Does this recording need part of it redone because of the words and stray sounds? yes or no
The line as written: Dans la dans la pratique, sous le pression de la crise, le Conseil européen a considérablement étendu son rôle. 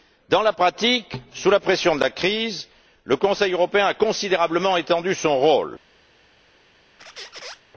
yes